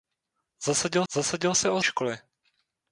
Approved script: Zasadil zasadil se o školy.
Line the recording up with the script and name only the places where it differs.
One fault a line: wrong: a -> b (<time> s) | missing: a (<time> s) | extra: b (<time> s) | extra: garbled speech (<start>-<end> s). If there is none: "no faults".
no faults